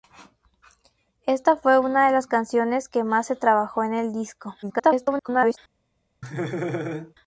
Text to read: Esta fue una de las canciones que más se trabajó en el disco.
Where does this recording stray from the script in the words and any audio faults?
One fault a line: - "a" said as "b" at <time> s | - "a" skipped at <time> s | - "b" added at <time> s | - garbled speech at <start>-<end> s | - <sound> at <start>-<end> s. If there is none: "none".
- garbled speech at 4.6-5.6 s
- laugh at 6.2-7.1 s